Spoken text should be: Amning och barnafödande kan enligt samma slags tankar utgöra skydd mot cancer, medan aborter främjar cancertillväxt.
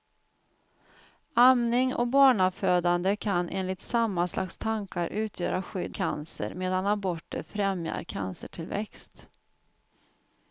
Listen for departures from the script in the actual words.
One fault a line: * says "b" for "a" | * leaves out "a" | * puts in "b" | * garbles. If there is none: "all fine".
* leaves out "mot"